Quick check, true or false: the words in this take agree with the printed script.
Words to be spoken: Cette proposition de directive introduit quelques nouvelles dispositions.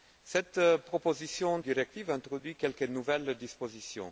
false